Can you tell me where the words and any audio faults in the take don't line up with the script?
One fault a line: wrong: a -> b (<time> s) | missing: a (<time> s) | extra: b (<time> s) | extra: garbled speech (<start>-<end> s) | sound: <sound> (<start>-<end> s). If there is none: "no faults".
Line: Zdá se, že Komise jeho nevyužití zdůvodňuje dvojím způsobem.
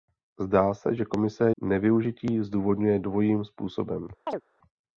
missing: jeho (1.5 s)
sound: chirp (4.3-4.4 s)